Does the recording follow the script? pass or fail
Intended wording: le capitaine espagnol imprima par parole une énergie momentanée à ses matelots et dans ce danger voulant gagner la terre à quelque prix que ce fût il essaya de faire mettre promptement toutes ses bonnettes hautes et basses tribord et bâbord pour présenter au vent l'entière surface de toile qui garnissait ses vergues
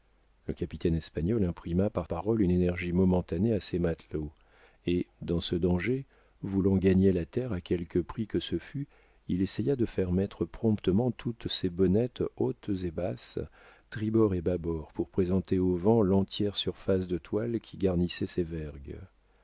pass